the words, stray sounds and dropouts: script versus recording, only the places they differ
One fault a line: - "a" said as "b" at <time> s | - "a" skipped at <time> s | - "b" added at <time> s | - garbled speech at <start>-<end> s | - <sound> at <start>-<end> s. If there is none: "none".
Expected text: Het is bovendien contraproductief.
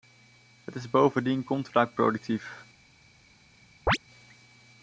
- chirp at 3.9-4.0 s